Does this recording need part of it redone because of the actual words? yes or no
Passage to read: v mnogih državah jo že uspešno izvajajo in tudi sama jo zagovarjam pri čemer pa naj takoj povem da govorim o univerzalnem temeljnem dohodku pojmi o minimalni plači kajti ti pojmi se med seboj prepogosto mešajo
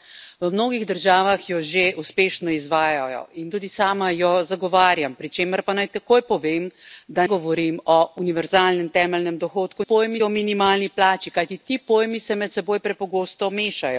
no